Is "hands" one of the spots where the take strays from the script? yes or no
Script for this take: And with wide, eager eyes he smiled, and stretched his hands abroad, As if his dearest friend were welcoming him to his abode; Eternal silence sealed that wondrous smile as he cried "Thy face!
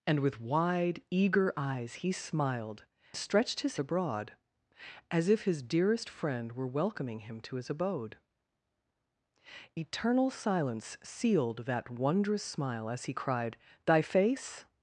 yes